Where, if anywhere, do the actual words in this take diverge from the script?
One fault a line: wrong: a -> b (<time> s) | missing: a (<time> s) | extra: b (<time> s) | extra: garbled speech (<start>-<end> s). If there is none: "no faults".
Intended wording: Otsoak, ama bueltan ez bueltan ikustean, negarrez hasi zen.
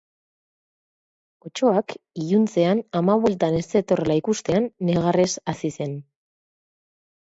extra: iluntzean (2.2 s)
wrong: bueltan -> zetorrela (3.8 s)